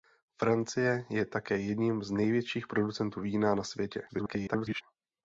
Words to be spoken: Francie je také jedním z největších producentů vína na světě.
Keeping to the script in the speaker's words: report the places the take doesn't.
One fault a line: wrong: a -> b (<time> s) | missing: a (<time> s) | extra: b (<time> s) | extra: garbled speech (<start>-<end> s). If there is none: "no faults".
extra: garbled speech (4.1-4.8 s)